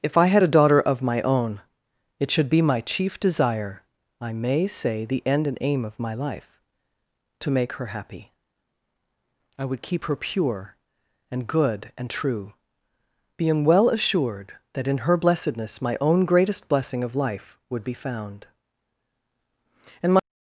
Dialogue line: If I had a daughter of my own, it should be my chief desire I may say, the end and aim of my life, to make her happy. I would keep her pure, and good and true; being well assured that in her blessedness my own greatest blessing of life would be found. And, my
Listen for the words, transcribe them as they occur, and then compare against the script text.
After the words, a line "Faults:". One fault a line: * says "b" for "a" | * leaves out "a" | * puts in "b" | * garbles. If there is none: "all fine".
If I had a daughter of my own, it should be my chief desire I may say, the end and aim of my life, to make her happy. I would keep her pure, and good and true; being well assured that in her blessedness my own greatest blessing of life would be found. And, my
Faults:
all fine